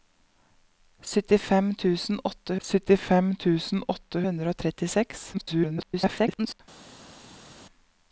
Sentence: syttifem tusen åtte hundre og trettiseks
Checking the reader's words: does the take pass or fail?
fail